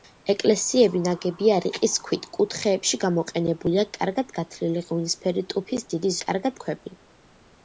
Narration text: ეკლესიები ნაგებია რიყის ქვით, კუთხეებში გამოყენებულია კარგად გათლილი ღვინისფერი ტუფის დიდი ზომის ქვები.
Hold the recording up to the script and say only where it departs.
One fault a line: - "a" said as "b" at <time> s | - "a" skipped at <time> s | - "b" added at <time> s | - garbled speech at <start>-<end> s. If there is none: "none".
- "ზომის" said as "კარგად" at 6.2 s